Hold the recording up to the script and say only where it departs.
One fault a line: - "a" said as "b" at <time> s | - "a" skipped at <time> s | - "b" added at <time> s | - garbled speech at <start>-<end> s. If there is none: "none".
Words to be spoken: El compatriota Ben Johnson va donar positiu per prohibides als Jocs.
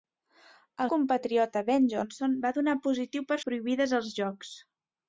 none